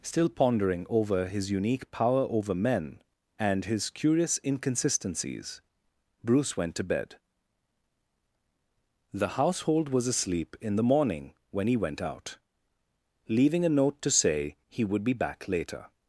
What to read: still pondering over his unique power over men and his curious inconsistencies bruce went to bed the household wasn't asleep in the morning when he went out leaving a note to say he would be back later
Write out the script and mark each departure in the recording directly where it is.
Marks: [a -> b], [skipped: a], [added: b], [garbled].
still pondering over his unique power over men and his curious inconsistencies bruce went to bed the household [wasn't -> was] asleep in the morning when he went out leaving a note to say he would be back later